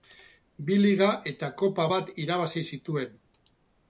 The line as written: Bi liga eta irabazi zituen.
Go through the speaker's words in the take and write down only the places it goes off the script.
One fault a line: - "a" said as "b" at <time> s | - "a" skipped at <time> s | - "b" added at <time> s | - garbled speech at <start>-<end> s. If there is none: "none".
- "kopa bat" added at 1.6 s